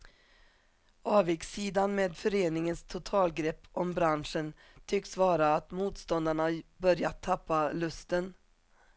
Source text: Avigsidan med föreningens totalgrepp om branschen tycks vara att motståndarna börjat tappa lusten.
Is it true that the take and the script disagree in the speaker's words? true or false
false